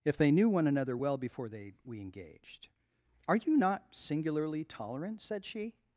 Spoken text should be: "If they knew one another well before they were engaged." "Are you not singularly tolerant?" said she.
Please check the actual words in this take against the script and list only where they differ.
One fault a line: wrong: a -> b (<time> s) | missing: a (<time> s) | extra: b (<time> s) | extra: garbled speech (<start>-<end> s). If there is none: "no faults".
wrong: were -> we (1.8 s)